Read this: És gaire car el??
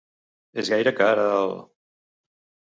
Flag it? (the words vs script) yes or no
no